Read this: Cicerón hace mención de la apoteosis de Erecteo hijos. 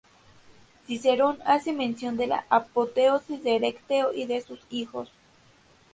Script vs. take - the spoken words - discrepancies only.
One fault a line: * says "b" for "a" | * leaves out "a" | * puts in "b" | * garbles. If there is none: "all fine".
* puts in "y de sus"